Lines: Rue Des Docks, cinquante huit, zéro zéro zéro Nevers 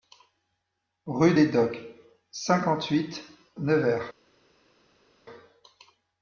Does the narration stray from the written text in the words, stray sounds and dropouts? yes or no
yes